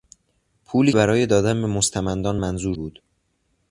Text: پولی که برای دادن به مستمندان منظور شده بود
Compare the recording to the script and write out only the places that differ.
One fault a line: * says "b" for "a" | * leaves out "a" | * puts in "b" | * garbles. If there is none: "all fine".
* leaves out "که"
* leaves out "شده"